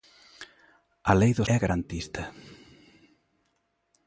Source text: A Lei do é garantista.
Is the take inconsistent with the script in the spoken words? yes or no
no